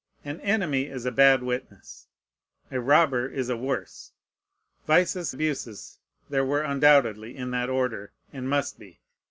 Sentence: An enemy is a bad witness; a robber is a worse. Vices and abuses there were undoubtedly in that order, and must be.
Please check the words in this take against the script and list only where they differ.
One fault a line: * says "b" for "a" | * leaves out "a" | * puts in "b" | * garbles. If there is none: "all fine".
* leaves out "and"